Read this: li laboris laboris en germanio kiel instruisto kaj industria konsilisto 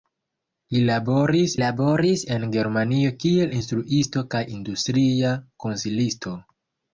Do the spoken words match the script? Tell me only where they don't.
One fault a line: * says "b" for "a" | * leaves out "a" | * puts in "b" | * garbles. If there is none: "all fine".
all fine